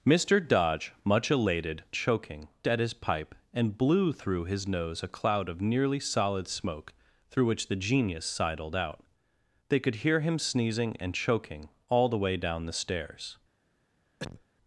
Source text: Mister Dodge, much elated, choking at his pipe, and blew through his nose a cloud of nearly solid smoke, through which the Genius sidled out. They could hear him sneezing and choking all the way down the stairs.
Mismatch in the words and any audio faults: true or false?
true